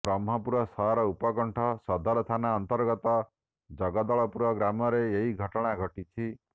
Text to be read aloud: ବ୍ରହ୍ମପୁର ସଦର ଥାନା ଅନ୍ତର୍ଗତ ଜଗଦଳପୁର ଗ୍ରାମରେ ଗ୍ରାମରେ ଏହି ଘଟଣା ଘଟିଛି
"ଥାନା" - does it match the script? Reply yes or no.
yes